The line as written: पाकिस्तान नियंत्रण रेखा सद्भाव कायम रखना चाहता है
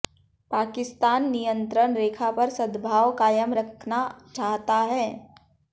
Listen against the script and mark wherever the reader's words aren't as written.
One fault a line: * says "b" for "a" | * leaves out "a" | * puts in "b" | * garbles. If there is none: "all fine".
* puts in "पर"